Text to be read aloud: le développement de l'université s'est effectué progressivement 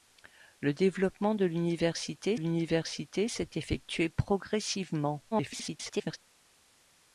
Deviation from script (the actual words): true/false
true